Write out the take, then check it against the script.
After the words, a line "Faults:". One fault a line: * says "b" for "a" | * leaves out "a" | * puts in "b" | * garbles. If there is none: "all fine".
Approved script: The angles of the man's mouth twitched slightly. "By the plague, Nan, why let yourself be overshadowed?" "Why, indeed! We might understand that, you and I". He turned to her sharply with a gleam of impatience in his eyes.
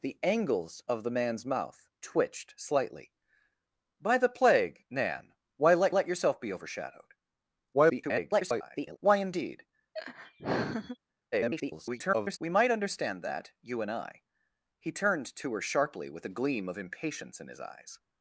The angles of the man's mouth twitched slightly. "By the plague, Nan, why let let yourself be overshadowed?" [garbled] "Why, indeed! [garbled] We might understand that, you and I". He turned to her sharply with a gleam of impatience in his eyes.
Faults:
* puts in "let"
* garbles
* garbles